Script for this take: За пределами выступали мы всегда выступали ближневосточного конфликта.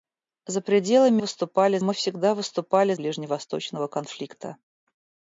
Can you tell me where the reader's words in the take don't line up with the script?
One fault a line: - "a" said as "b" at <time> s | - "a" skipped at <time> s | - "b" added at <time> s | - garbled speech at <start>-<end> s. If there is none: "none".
none